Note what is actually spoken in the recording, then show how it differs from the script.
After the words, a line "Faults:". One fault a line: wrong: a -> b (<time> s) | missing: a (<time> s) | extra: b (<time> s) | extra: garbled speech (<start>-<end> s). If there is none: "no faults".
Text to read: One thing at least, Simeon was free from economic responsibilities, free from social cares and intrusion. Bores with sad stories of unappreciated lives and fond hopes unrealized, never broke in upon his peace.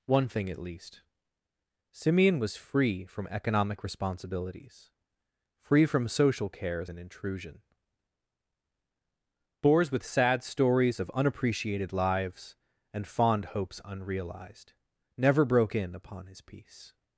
One thing at least, Simeon was free from economic responsibilities, free from social cares and intrusion. Bores with sad stories of unappreciated lives and fond hopes unrealized, never broke in upon his peace.
Faults:
no faults